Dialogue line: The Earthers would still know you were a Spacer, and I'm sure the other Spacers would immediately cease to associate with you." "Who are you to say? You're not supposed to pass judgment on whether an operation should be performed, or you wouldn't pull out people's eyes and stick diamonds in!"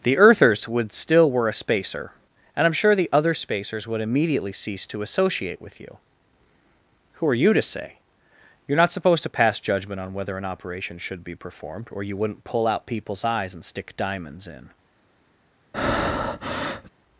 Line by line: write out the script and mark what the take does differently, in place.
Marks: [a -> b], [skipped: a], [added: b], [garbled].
The Earthers would still [skipped: know you] were a Spacer, and I'm sure the other Spacers would immediately cease to associate with you." "Who are you to say? You're not supposed to pass judgment on whether an operation should be performed, or you wouldn't pull out people's eyes and stick diamonds in!"